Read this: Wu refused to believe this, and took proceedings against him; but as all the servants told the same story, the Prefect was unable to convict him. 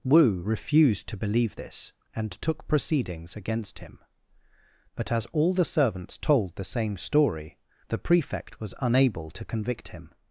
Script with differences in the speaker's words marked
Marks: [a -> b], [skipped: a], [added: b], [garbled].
Wu refused to believe this, and took proceedings against him; but as all the servants told the same story, the Prefect was unable to convict him.